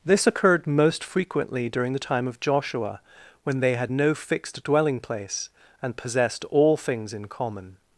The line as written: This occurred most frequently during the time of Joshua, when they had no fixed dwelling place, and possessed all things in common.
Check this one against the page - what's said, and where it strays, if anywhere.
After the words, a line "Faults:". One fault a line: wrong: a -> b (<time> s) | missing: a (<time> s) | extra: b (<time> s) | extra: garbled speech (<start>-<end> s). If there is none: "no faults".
This occurred most frequently during the time of Joshua, when they had no fixed dwelling place, and possessed all things in common.
Faults:
no faults